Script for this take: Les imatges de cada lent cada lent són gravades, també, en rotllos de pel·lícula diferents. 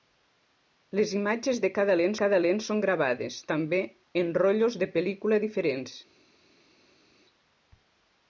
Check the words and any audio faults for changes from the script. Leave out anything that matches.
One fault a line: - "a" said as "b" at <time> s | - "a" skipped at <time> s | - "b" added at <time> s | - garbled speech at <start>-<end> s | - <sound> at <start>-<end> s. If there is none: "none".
none